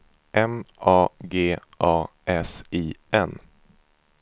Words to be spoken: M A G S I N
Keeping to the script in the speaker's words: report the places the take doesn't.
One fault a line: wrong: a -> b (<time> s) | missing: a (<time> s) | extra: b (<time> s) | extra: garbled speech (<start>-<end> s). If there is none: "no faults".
extra: A (1.8 s)